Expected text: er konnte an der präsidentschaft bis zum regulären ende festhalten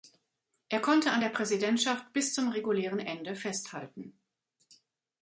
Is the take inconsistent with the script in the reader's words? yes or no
no